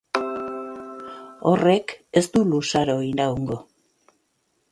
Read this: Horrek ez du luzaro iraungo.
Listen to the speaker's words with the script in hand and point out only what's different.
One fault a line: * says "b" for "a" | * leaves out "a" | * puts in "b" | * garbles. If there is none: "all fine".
all fine